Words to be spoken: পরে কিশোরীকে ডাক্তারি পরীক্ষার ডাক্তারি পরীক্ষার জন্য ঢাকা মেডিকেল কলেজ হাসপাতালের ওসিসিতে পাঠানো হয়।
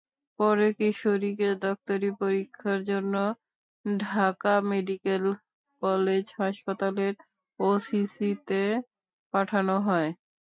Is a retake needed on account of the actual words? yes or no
yes